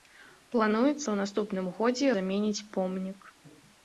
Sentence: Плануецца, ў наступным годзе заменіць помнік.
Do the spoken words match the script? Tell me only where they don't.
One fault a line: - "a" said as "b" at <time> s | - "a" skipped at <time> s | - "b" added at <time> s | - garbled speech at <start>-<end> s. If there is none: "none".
none